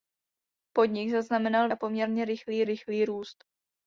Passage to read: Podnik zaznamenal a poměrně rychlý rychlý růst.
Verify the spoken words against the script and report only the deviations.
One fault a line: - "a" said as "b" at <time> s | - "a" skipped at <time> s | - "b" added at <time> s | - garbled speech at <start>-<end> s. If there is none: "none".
none